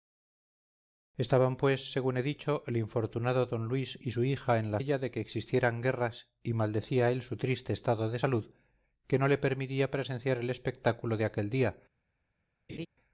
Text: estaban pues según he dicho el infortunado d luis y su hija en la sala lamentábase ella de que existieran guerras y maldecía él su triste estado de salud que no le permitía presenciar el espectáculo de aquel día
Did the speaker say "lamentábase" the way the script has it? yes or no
no